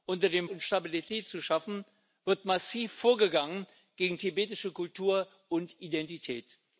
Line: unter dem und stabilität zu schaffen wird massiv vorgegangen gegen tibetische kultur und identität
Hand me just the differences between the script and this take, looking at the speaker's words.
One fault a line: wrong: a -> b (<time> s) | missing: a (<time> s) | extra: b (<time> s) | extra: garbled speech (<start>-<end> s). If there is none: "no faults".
no faults